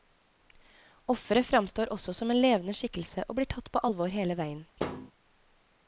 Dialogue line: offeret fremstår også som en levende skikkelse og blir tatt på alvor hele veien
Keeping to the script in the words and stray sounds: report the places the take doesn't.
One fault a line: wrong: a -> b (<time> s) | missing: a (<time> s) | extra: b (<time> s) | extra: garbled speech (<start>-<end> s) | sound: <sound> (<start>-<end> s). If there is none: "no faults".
sound: thud (4.8-5.1 s)